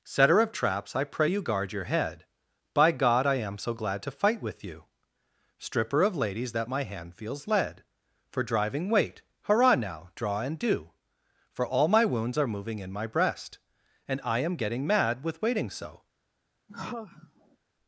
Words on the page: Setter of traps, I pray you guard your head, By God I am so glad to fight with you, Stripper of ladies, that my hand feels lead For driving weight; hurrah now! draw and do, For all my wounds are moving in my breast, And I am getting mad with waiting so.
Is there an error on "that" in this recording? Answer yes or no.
no